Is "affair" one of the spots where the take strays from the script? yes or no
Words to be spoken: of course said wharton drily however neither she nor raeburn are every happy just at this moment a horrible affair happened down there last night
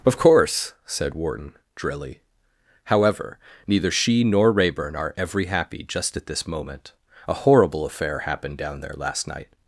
no